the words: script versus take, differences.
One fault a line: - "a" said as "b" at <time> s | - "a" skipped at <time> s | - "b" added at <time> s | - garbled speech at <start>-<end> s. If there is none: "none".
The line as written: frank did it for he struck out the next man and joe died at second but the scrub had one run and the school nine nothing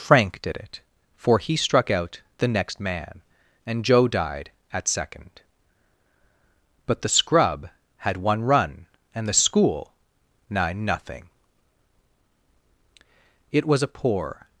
- "it was a poor" added at 13.5 s